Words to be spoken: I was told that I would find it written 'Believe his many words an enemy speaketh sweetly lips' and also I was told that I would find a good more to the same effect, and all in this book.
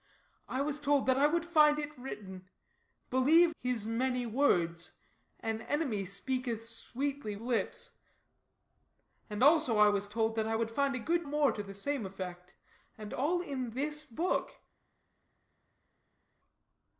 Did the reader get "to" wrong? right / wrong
right